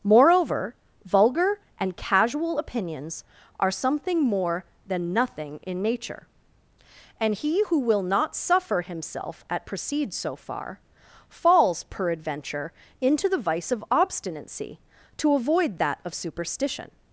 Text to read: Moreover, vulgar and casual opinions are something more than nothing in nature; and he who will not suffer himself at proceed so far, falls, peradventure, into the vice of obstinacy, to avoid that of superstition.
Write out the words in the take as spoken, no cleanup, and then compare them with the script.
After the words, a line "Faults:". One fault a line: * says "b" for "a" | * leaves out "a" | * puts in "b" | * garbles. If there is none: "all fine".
Moreover, vulgar and casual opinions are something more than nothing in nature; and he who will not suffer himself at proceed so far, falls, peradventure, into the vice of obstinacy, to avoid that of superstition.
Faults:
all fine